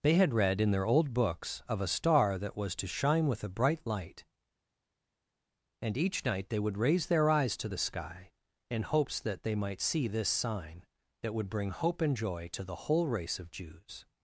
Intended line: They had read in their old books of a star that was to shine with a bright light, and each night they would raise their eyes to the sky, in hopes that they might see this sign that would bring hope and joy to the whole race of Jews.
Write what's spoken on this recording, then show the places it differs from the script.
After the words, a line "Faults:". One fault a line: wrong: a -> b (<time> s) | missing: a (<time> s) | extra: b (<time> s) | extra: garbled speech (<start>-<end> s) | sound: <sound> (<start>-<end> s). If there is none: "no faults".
They had read in their old books of a star that was to shine with a bright light, and each night they would raise their eyes to the sky, in hopes that they might see this sign that would bring hope and joy to the whole race of Jews.
Faults:
no faults